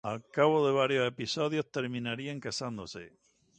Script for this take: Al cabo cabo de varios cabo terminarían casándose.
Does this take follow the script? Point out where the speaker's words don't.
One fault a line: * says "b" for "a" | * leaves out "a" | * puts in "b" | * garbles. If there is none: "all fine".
* leaves out "cabo"
* says "episodios" for "cabo"